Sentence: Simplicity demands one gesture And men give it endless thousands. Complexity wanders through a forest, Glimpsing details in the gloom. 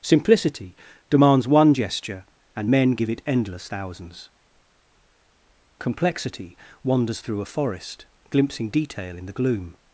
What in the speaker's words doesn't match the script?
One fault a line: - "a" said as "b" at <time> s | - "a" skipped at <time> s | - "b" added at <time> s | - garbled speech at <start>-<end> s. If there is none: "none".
- "details" said as "detail" at 8.7 s